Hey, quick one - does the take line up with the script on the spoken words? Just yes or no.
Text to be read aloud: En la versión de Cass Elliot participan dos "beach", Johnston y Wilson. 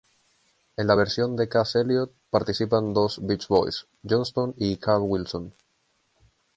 no